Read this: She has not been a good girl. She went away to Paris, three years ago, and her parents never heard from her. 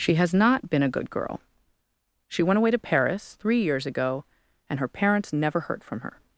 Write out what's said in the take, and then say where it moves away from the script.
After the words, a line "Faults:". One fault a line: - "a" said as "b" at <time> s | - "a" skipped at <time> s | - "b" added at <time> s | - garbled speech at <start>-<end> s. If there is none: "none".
She has not been a good girl. She went away to Paris, three years ago, and her parents never heard from her.
Faults:
none